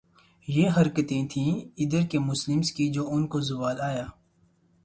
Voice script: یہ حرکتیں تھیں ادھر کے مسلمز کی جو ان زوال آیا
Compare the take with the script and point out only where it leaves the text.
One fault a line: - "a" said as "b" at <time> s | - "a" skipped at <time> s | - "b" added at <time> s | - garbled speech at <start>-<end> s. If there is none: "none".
- "کو" added at 3.3 s